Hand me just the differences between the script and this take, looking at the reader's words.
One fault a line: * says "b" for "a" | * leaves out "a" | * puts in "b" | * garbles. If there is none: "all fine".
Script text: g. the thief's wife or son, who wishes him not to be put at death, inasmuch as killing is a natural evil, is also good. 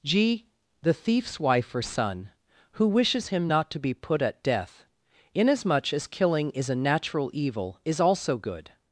all fine